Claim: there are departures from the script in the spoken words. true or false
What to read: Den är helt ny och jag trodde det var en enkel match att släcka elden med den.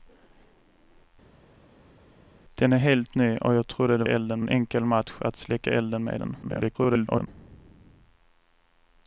true